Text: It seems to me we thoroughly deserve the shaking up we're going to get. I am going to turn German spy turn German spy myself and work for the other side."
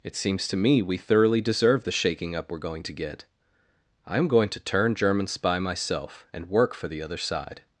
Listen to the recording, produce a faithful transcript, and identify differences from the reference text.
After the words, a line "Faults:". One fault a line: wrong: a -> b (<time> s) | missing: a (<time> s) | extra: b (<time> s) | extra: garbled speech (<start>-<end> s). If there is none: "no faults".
It seems to me we thoroughly deserve the shaking up we're going to get. I am going to turn German spy myself and work for the other side."
Faults:
missing: turn German spy (5.6 s)